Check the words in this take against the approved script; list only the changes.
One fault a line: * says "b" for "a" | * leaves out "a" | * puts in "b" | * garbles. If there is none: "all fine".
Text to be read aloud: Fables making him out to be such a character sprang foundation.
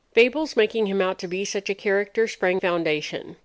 all fine